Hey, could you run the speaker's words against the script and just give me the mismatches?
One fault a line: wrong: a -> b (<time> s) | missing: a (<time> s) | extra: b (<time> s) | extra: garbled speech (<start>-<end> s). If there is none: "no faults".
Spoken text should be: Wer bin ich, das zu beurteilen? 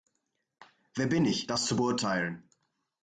no faults